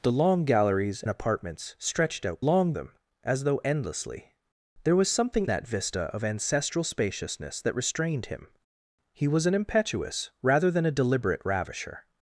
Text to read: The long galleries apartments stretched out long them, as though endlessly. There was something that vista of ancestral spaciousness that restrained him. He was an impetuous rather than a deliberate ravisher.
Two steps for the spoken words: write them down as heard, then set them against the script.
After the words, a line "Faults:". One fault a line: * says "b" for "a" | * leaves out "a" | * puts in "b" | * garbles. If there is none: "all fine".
The long galleries apartments stretched out long them, as though endlessly. There was something that vista of ancestral spaciousness that restrained him. He was an impetuous rather than a deliberate ravisher.
Faults:
all fine